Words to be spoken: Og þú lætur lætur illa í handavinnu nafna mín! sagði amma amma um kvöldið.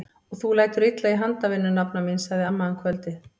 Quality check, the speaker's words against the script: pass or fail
fail